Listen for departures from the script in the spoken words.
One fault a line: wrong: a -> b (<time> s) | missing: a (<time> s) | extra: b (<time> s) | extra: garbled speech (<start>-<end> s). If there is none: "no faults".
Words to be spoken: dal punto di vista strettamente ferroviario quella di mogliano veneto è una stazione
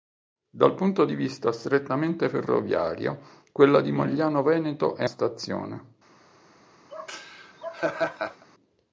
missing: una (5.0 s)